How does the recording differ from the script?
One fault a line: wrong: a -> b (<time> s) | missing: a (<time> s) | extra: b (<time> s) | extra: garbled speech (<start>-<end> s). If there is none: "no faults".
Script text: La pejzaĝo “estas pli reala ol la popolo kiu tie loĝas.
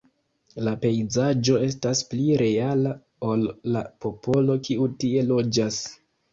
no faults